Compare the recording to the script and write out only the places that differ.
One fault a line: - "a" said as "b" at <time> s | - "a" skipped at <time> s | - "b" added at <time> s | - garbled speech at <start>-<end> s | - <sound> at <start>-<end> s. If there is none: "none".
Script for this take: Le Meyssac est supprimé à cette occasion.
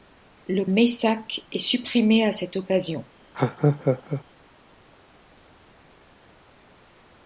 - laugh at 3.3-4.2 s